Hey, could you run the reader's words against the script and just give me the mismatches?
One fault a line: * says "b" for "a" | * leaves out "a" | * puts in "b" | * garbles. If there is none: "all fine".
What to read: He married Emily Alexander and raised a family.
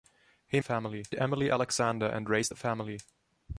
* says "family" for "married"